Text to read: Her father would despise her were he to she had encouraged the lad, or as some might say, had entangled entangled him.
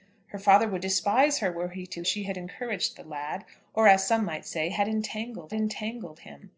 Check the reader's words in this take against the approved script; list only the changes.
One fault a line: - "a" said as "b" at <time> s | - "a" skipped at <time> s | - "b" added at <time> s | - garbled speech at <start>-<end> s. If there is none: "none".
none